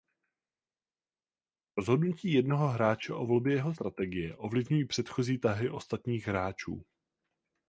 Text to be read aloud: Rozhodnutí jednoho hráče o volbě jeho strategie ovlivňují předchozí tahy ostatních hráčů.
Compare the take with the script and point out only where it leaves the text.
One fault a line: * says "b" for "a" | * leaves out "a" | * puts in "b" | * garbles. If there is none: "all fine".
all fine